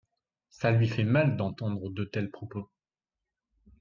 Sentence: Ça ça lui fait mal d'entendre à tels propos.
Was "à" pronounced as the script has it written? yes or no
no